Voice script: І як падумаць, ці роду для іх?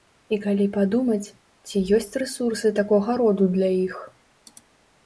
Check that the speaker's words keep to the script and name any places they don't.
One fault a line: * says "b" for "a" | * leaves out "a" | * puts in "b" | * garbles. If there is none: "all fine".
* says "калі" for "як"
* puts in "ёсць рэсурсы такога"